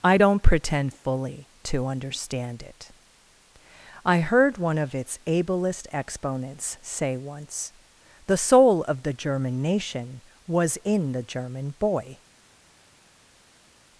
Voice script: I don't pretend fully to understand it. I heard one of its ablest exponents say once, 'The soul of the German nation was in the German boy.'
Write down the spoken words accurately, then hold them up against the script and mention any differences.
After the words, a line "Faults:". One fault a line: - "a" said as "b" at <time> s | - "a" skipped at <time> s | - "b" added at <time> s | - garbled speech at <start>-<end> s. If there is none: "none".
I don't pretend fully to understand it. I heard one of its ablest exponents say once, 'The soul of the German nation was in the German boy.'
Faults:
none